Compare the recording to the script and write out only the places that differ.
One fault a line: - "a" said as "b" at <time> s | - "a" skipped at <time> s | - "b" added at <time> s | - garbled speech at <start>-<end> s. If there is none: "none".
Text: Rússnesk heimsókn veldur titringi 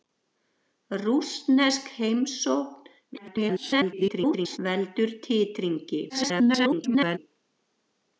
- garbled speech at 3.1-4.6 s
- garbled speech at 6.1-7.2 s